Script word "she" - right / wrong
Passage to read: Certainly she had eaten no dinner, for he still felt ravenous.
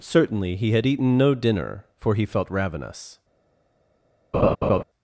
wrong